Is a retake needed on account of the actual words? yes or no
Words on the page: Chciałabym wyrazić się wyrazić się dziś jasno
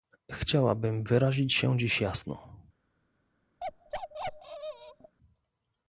yes